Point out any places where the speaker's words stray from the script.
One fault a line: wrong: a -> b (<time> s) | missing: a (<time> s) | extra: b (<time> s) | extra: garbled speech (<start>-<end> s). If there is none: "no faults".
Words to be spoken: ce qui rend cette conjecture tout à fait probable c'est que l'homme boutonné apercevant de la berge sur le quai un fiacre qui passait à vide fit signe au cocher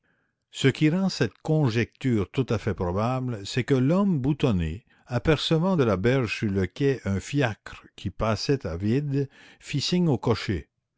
no faults